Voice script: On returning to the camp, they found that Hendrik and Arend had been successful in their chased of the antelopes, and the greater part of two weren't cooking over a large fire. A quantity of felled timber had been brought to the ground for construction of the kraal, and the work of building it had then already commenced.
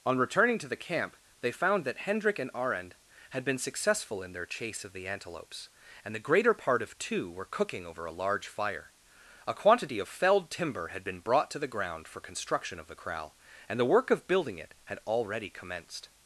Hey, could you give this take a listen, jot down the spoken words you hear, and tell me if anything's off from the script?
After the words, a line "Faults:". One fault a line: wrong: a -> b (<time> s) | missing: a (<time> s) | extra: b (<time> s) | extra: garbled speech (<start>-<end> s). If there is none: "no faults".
On returning to the camp, they found that Hendrik and Arend had been successful in their chase of the antelopes, and the greater part of two were cooking over a large fire. A quantity of felled timber had been brought to the ground for construction of the kraal, and the work of building it had already commenced.
Faults:
wrong: chased -> chase (4.5 s)
wrong: weren't -> were (7.3 s)
missing: then (15.0 s)